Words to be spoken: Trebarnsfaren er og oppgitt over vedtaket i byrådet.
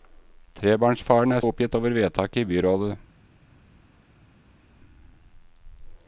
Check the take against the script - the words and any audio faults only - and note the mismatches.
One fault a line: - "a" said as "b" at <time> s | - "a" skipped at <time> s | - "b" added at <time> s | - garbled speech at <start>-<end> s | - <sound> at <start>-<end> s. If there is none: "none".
none